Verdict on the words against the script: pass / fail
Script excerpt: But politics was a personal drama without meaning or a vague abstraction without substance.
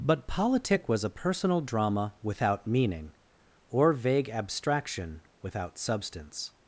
fail